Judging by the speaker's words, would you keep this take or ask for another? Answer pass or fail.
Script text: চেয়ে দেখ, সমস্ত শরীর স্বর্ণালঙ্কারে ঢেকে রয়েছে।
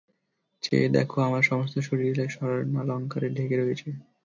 fail